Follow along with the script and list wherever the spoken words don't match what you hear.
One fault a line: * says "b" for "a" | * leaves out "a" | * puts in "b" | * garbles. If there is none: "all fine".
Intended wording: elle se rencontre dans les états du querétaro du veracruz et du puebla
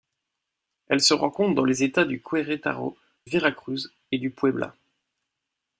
* leaves out "du"